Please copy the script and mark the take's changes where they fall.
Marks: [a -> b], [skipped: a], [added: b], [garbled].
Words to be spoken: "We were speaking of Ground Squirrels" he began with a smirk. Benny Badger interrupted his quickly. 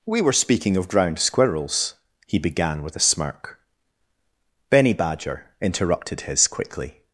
"We were speaking of Ground Squirrels" he began with a smirk. Benny Badger interrupted his quickly.